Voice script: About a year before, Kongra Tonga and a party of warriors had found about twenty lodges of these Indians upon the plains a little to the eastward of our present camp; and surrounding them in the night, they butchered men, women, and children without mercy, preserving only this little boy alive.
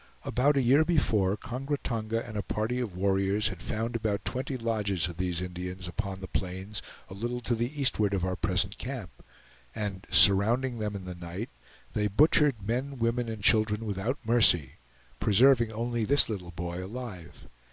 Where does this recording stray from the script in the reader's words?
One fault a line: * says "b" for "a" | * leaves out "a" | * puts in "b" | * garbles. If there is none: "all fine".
all fine